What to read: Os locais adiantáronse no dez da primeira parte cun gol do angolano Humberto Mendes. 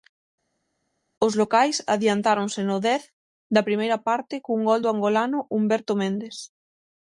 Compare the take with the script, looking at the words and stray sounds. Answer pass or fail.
pass